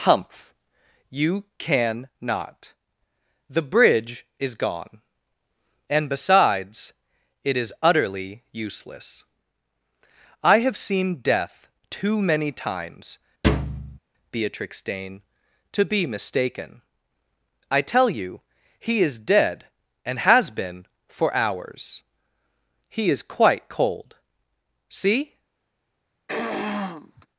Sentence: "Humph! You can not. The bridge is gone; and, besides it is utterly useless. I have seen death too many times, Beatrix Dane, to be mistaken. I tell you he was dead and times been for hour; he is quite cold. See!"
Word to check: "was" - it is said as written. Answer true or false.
false